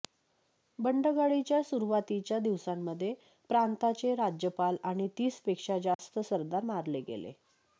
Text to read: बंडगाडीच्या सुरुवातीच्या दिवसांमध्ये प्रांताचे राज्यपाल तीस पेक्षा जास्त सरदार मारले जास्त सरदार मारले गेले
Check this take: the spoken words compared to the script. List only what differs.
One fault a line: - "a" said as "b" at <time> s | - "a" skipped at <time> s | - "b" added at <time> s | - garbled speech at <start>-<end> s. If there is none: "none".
- "आणि" added at 4.8 s
- "जास्त सरदार मारले" skipped at 7.0 s